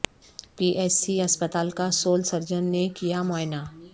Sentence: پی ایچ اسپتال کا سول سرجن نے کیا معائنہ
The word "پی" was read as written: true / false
true